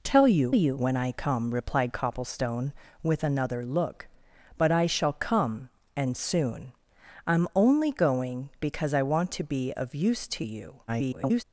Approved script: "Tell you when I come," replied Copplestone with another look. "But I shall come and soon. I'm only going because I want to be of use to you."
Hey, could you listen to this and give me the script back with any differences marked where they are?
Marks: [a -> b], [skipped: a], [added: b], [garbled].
"Tell you [added: you] when I come," replied Copplestone with another look. "But I shall come and soon. I'm only going because I want to be of use to you." [garbled]